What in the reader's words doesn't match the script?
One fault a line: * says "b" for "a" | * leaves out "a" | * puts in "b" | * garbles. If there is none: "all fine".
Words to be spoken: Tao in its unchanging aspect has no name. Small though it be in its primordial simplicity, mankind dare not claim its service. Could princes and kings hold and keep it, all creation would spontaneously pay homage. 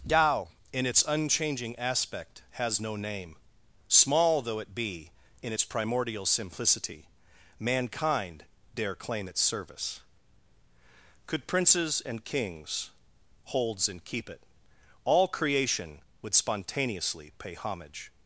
* leaves out "not"
* says "holds" for "hold"